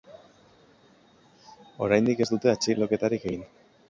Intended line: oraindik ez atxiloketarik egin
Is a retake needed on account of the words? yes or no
yes